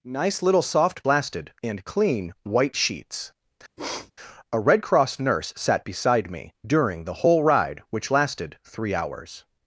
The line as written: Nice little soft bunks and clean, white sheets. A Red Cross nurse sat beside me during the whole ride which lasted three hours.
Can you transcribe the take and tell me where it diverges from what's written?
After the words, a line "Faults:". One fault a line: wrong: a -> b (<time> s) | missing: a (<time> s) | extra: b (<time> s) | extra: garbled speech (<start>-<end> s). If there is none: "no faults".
Nice little soft lasted and clean, white sheets. A Red Cross nurse sat beside me during the whole ride which lasted three hours.
Faults:
wrong: bunks -> lasted (1.1 s)